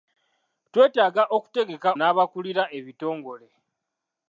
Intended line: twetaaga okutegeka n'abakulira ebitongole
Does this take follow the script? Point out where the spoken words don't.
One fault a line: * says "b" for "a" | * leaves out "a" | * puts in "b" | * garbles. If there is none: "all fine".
all fine